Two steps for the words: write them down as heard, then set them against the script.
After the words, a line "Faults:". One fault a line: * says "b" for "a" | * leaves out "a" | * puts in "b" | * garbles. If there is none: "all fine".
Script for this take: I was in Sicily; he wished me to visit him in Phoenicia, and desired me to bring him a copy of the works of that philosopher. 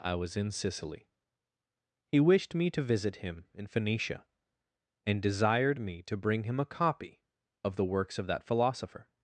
I was in Sicily; he wished me to visit him in Phoenicia, and desired me to bring him a copy of the works of that philosopher.
Faults:
all fine